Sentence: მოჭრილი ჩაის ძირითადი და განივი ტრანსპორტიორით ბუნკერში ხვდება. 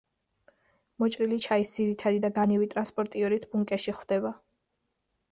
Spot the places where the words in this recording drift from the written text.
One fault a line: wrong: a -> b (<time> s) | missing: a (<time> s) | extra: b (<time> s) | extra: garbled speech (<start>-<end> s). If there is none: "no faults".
no faults